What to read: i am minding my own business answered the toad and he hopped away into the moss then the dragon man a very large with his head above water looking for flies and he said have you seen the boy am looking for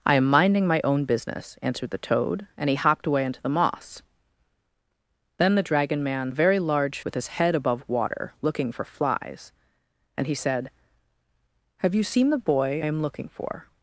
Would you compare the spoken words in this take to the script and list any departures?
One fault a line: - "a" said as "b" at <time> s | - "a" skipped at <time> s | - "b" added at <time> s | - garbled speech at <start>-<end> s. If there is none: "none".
none